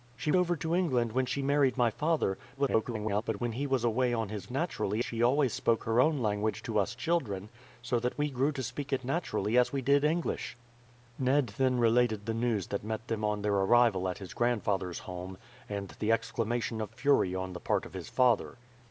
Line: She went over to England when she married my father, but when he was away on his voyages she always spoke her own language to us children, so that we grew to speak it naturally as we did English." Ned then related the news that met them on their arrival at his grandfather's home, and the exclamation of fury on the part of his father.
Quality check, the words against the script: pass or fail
fail